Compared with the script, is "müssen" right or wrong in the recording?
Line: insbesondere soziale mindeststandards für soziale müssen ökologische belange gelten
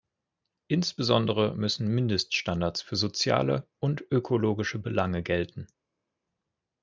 wrong